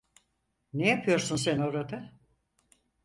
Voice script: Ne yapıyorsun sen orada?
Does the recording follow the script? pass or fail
pass